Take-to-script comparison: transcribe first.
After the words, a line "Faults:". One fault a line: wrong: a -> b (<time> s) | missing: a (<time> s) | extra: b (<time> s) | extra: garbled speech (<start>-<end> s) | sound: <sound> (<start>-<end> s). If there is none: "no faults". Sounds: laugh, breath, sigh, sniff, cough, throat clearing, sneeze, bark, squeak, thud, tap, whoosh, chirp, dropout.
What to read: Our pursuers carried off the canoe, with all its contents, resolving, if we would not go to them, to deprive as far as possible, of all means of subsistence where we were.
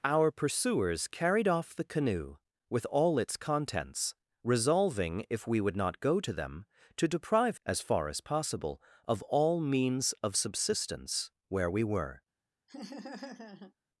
Our pursuers carried off the canoe, with all its contents, resolving, if we would not go to them, to deprive as far as possible, of all means of subsistence where we were.
Faults:
sound: laugh (12.7-13.7 s)